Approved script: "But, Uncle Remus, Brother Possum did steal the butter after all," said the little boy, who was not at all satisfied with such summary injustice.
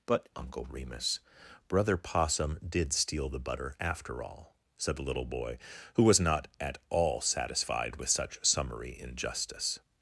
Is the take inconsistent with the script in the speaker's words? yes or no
no